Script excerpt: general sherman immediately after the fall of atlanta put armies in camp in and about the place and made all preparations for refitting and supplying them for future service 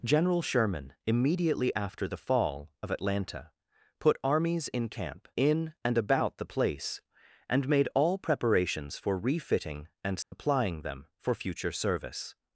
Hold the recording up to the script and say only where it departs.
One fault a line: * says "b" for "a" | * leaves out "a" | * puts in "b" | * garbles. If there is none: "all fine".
all fine